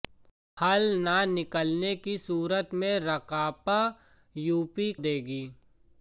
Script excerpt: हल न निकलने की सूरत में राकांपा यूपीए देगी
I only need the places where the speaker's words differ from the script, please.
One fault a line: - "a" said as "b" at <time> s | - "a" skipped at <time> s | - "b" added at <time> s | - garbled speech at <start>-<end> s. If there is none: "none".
none